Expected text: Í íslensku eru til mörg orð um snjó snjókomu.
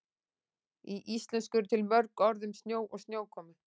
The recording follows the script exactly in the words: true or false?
false